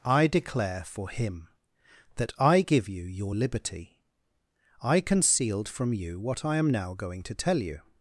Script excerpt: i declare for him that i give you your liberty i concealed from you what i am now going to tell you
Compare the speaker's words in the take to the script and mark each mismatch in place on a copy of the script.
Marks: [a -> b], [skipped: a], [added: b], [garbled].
i declare for him that i give you your liberty i concealed from you what i am now going to tell you